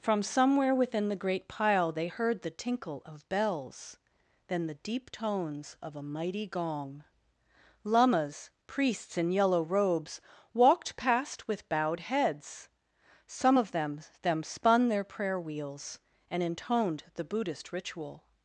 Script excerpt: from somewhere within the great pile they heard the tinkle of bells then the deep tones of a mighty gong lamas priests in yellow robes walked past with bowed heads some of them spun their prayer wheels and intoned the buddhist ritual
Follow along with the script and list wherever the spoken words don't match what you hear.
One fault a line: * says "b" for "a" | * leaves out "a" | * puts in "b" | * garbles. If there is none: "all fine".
* puts in "them"